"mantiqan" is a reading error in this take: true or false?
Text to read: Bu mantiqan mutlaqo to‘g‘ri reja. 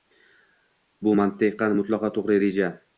false